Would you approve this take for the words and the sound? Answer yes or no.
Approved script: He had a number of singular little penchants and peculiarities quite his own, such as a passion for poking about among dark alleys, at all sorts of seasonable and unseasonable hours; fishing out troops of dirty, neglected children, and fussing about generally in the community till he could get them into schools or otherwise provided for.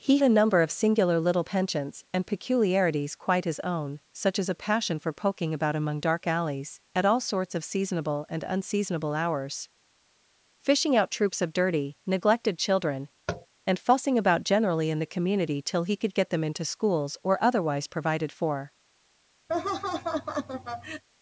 no